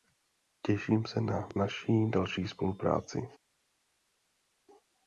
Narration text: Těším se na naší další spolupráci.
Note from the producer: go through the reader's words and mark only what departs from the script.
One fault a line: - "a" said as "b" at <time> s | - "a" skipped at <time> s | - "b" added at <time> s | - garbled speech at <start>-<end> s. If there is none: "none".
none